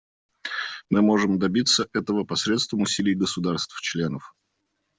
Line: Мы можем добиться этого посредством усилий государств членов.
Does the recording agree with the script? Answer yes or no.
yes